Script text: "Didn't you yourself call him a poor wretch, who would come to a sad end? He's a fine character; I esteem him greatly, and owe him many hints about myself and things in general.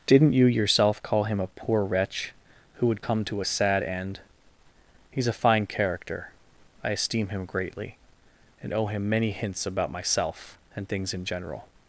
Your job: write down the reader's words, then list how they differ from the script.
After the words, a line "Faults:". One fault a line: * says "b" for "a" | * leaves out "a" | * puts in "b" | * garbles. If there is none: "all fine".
"Didn't you yourself call him a poor wretch, who would come to a sad end? He's a fine character; I esteem him greatly, and owe him many hints about myself and things in general.
Faults:
all fine